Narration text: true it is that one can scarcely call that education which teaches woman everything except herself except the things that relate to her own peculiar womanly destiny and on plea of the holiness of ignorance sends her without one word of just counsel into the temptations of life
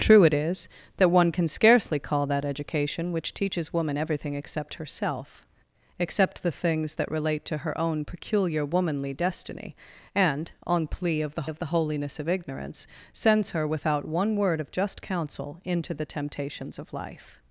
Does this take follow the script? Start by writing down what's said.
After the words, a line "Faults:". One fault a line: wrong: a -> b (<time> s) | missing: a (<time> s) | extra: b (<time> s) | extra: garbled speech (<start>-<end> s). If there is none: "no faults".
true it is that one can scarcely call that education which teaches woman everything except herself except the things that relate to her own peculiar womanly destiny and on plea of the of the holiness of ignorance sends her without one word of just counsel into the temptations of life
Faults:
extra: of the (11.5 s)